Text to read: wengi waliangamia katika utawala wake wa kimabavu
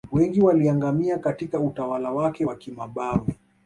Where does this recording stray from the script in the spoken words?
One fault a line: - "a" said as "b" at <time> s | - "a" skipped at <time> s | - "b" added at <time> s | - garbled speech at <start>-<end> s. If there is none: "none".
none